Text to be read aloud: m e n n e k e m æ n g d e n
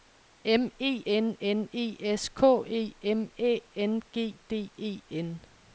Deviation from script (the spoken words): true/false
true